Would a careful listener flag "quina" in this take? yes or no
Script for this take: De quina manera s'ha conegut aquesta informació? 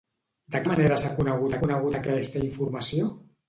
yes